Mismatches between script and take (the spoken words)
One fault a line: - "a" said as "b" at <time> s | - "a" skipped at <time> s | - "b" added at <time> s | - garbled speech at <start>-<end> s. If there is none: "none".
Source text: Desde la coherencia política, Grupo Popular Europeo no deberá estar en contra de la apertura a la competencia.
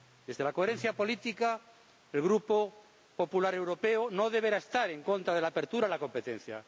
- "el" added at 2.1 s